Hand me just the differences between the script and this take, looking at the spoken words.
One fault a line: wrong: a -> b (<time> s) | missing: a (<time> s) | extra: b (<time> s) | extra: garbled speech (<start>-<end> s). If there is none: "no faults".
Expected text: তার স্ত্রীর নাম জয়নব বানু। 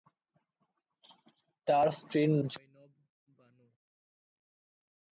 missing: নাম (2.3 s)